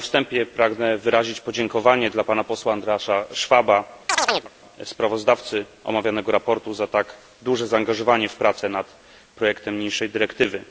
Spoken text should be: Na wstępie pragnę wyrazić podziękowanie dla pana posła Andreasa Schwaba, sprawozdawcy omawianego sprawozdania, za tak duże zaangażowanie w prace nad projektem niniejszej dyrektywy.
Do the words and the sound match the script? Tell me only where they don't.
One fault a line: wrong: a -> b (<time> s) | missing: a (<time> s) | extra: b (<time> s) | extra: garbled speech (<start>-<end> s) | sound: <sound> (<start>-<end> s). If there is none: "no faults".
sound: chirp (4.1-4.5 s)